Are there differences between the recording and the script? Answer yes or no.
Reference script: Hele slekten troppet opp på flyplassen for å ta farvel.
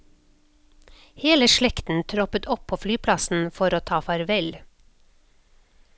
no